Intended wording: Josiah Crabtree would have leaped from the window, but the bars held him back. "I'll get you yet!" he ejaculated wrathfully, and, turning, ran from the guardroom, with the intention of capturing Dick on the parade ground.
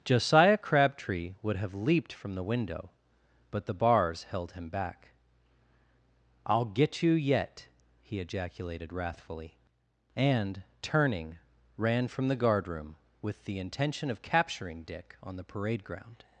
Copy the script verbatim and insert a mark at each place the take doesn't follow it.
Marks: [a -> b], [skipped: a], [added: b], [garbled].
Josiah Crabtree would have leaped from the window, but the bars held him back. "I'll get you yet!" he ejaculated wrathfully, and, turning, ran from the guardroom, with the intention of capturing Dick on the parade ground.